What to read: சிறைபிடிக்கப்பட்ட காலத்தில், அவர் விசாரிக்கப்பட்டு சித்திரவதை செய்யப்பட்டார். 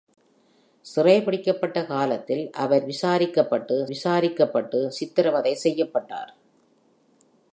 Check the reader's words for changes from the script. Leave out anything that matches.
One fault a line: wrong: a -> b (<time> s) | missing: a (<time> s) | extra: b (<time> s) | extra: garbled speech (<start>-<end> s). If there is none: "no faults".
extra: விசாரிக்கப்பட்டு (3.9 s)